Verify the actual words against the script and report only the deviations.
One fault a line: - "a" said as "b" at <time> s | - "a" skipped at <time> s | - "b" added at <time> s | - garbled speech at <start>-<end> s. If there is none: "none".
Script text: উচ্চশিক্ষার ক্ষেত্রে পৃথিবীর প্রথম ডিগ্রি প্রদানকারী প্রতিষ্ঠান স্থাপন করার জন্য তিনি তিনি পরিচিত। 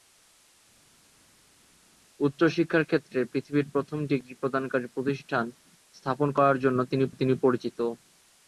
none